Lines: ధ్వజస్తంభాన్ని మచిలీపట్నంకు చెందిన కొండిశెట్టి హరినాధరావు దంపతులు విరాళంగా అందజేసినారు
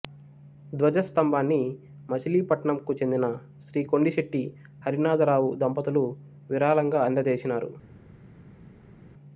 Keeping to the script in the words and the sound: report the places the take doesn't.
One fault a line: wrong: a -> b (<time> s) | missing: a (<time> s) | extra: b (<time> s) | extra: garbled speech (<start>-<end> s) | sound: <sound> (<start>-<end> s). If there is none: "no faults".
extra: శ్రీ (3.6 s)